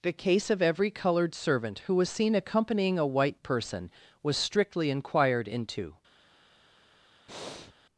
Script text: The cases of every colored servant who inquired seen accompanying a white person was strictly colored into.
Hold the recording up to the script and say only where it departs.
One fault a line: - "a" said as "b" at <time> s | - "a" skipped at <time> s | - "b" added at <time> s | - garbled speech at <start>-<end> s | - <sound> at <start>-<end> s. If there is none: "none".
- "cases" said as "case" at 0.1 s
- "inquired" said as "was" at 1.9 s
- "colored" said as "inquired" at 4.9 s
- breath at 7.3-7.7 s